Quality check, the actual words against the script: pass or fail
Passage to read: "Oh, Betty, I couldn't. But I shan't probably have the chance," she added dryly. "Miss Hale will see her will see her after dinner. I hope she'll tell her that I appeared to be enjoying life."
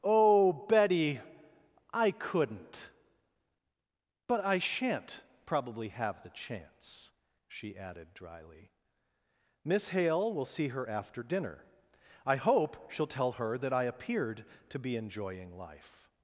fail